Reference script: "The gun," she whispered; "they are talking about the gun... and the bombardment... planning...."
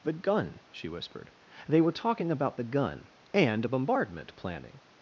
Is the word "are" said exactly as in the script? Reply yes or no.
no